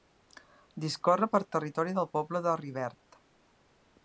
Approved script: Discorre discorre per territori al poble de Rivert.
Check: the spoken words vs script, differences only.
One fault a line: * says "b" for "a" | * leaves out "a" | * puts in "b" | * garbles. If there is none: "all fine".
* leaves out "discorre"
* says "del" for "al"